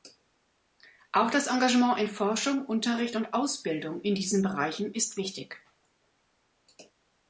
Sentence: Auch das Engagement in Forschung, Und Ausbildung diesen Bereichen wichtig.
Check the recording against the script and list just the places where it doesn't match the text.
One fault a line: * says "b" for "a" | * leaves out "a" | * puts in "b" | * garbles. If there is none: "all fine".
* puts in "Unterricht"
* puts in "in"
* puts in "ist"